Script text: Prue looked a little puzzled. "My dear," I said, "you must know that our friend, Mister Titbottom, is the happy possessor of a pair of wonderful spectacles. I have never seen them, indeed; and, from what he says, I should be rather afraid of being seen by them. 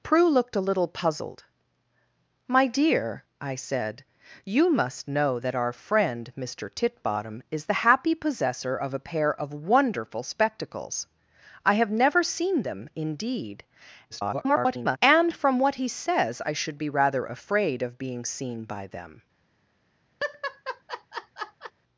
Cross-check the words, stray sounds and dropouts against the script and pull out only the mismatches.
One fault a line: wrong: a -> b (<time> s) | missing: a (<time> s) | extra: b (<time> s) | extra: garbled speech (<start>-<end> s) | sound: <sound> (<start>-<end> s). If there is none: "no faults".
extra: garbled speech (14.1-15.0 s)
sound: laugh (20.2-21.7 s)